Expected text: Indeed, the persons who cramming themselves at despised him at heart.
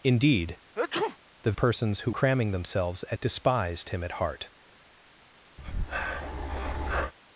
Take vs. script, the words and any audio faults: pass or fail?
fail